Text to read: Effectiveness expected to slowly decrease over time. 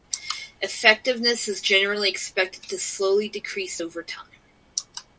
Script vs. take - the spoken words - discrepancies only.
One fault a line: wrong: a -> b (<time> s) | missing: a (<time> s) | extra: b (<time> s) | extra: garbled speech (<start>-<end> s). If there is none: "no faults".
extra: is generally (1.5 s)